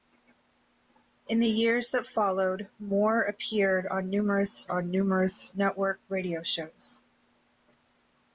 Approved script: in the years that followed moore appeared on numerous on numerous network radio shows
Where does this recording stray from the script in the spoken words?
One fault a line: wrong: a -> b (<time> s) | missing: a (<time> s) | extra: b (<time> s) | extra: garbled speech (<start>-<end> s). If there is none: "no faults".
no faults